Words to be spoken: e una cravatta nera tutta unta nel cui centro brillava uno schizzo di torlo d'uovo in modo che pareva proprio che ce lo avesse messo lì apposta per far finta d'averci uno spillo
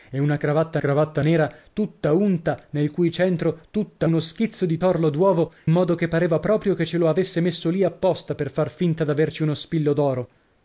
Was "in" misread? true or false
true